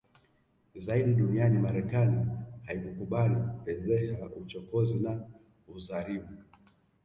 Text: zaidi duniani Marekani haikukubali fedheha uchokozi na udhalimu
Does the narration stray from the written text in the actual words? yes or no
no